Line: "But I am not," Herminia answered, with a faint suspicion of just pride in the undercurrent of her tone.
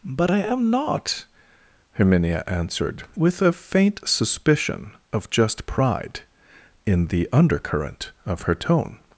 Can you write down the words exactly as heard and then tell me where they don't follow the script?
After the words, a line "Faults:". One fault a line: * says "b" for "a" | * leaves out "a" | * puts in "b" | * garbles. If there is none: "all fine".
"But I am not," Herminia answered, with a faint suspicion of just pride in the undercurrent of her tone.
Faults:
all fine